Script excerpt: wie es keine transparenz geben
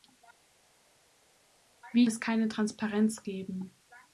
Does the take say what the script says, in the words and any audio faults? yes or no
yes